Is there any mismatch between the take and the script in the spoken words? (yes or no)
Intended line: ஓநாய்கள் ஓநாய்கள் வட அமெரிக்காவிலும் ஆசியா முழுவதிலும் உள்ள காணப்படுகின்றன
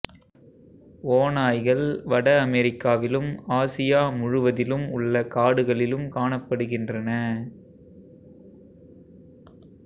yes